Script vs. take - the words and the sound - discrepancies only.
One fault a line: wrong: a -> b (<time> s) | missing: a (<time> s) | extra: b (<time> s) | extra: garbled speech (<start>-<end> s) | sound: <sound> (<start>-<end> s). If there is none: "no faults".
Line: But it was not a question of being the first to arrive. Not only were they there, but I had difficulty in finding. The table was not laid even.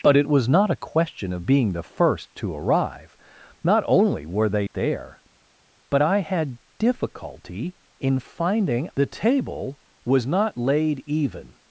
no faults